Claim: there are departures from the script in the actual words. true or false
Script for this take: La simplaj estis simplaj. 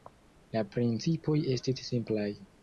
true